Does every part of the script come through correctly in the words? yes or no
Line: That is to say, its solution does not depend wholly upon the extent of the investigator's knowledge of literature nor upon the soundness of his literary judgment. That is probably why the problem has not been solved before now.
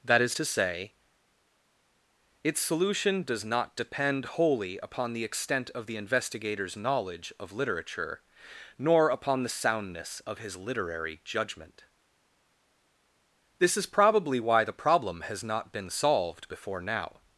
no